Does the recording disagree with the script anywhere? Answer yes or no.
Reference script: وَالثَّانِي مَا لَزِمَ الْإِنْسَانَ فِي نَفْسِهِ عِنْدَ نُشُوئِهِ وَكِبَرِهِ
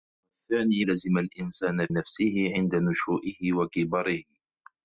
yes